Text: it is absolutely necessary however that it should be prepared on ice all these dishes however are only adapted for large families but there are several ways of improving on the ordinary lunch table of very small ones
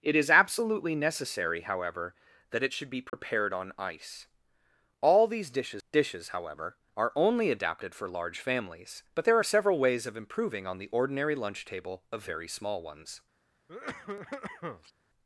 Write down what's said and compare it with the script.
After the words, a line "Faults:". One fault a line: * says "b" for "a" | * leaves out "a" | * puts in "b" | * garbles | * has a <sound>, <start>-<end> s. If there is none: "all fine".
it is absolutely necessary however that it should be prepared on ice all these dishes dishes however are only adapted for large families but there are several ways of improving on the ordinary lunch table of very small ones
Faults:
* has a dropout, 3.1-3.1 s
* puts in "dishes"
* has a cough, 13.7-14.9 s